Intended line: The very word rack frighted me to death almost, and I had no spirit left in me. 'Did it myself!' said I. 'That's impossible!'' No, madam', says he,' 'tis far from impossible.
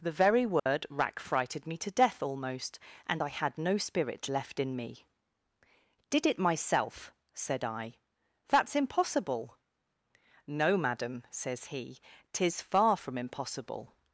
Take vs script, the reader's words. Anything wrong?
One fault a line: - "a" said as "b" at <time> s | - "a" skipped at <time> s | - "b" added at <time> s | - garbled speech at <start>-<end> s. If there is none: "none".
none